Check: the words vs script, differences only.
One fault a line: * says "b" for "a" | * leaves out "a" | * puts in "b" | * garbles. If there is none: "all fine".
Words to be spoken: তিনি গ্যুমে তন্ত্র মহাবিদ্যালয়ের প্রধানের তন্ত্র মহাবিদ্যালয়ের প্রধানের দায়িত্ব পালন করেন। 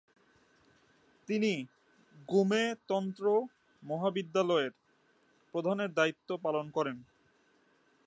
* leaves out "তন্ত্র মহাবিদ্যালয়ের প্রধানের"